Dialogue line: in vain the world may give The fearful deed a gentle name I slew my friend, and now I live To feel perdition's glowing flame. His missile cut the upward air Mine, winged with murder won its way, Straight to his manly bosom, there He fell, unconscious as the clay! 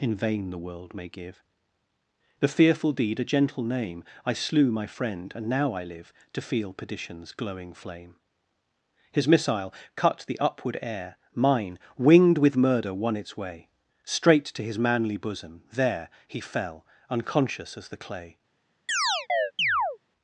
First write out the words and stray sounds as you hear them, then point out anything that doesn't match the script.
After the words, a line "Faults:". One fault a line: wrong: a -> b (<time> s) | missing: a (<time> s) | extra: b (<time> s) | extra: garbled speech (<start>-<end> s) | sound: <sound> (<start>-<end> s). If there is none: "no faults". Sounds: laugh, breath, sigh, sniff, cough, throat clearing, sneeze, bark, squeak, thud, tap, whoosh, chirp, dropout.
in vain the world may give The fearful deed a gentle name I slew my friend, and now I live To feel perdition's glowing flame. His missile cut the upward air Mine, winged with murder won its way, Straight to his manly bosom, there He fell, unconscious as the clay!
Faults:
sound: chirp (18.9-20.0 s)